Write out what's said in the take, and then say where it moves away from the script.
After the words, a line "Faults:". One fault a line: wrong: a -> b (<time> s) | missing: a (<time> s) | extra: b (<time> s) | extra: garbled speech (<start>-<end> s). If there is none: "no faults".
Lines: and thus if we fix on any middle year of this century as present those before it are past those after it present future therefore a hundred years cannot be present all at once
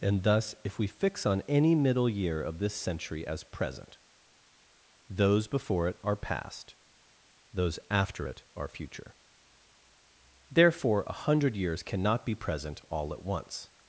and thus if we fix on any middle year of this century as present those before it are past those after it are future therefore a hundred years cannot be present all at once
Faults:
wrong: present -> are (8.6 s)